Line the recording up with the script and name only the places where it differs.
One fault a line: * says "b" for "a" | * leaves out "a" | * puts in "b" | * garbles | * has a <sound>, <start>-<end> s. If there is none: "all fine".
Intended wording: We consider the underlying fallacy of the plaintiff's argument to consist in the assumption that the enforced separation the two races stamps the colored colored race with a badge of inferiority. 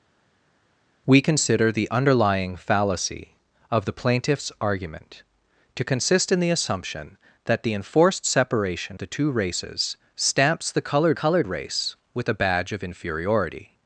all fine